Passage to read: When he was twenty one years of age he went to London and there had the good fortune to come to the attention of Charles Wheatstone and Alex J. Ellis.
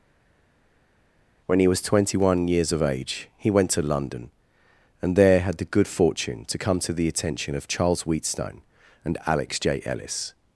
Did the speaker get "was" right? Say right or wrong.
right